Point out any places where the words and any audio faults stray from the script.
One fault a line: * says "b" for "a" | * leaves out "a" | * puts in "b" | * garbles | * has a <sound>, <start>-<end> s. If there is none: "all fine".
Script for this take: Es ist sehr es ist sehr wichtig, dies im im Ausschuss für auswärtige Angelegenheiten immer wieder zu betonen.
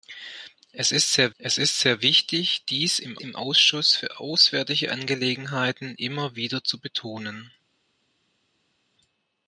all fine